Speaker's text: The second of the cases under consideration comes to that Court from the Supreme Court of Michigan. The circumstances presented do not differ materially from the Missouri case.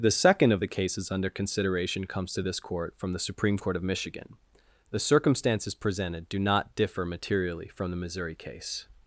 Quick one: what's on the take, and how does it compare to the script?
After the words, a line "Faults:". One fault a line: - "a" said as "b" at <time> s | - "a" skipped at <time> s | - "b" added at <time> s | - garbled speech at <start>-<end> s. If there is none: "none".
The second of the cases under consideration comes to this Court from the Supreme Court of Michigan. The circumstances presented do not differ materially from the Missouri case.
Faults:
- "that" said as "this" at 2.4 s